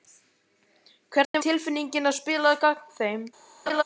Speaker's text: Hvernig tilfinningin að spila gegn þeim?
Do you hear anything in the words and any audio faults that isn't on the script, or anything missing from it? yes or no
yes